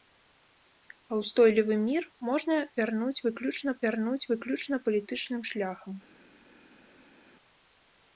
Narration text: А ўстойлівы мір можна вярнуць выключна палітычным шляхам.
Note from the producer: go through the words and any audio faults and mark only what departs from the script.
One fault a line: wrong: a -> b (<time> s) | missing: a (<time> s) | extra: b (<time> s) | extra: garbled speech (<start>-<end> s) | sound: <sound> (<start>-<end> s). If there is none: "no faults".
extra: вярнуць выключна (3.9 s)